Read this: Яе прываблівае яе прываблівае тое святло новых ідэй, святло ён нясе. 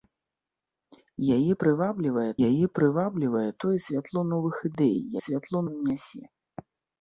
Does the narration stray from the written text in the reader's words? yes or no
no